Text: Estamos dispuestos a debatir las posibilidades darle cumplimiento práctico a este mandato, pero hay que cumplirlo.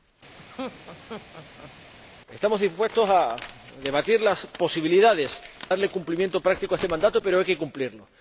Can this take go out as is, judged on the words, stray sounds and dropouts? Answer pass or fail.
fail